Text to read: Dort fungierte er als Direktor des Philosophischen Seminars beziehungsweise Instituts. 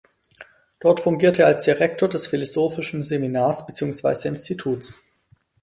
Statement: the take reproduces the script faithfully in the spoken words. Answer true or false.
true